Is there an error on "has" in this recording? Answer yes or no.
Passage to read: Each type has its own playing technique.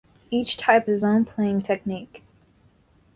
yes